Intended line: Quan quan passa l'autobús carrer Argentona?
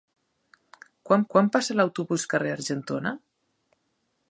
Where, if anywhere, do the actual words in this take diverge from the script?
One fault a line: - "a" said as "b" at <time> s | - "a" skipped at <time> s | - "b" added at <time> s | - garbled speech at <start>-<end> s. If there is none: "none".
none